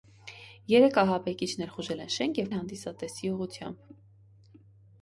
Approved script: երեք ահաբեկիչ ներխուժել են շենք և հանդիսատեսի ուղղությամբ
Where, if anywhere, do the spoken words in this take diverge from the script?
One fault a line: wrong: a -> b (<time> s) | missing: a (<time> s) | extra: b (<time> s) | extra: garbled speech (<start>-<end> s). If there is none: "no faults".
no faults